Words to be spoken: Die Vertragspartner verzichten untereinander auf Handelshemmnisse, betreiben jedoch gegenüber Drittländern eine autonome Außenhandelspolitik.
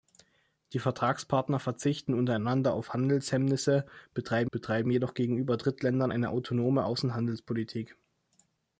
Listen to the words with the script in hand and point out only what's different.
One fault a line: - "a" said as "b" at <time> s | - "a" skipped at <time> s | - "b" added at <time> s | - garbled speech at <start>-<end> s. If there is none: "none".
- "betreiben" added at 4.5 s